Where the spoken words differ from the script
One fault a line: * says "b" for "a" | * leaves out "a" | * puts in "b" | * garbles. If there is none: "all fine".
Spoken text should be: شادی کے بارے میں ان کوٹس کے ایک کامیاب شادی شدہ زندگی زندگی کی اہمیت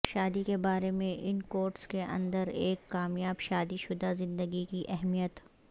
* puts in "اندر"
* leaves out "زندگی"